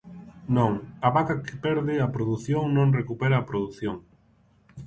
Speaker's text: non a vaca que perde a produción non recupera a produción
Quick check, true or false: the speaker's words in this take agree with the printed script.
true